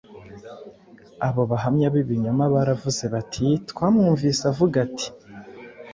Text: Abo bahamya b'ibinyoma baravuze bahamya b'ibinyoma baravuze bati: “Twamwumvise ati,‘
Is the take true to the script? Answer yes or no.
no